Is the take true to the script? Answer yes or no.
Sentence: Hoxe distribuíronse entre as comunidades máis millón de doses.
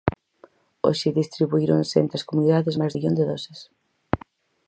yes